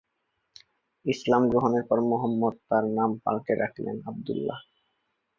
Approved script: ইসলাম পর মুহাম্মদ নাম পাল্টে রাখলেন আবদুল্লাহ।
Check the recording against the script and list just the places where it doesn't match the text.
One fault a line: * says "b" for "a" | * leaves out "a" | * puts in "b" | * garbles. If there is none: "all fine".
* puts in "গ্রহণের"
* puts in "তার"